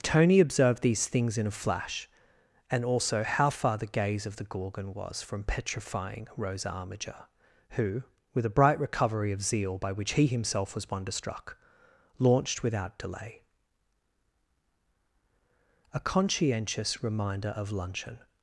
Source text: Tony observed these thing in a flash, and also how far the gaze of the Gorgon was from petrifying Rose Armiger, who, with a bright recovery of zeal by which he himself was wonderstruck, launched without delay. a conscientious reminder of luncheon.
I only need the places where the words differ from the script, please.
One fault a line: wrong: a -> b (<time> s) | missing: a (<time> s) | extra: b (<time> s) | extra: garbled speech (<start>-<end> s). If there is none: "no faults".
wrong: thing -> things (1.1 s)